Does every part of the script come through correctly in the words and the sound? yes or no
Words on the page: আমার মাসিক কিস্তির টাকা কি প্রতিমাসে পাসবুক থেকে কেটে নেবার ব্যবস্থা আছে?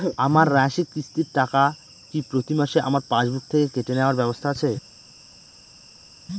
no